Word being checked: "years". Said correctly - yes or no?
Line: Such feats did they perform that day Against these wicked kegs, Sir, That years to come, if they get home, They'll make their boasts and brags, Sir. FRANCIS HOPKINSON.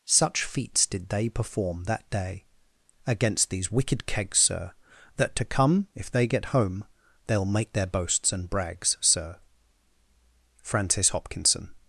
no